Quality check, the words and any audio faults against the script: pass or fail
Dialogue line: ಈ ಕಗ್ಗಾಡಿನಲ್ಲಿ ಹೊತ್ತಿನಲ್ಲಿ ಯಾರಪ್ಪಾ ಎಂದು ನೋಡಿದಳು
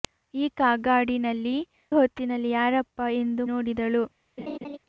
fail